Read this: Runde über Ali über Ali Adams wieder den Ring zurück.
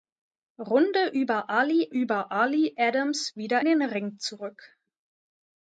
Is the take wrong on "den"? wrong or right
right